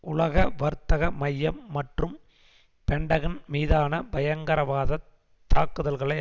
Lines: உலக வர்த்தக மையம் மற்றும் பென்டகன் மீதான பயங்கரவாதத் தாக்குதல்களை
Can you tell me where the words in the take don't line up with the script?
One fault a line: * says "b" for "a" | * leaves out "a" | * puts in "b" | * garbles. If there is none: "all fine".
all fine